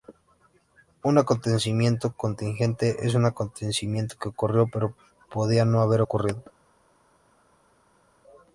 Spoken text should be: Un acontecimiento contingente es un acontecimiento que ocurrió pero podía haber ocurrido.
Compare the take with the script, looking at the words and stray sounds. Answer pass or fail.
fail